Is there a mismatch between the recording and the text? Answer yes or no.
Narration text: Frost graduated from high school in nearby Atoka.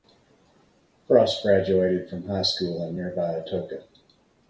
no